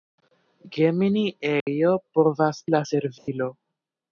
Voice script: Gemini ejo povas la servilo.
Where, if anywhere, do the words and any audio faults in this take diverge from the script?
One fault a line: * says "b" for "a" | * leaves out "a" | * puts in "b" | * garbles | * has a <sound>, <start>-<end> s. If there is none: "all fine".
* has a dropout, 1.6-1.7 s
* has a dropout, 3.2-3.3 s